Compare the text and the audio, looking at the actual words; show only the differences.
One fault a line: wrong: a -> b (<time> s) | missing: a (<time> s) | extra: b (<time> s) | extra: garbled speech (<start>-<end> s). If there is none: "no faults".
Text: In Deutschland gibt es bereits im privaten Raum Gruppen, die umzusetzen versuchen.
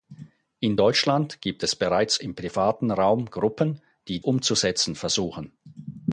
no faults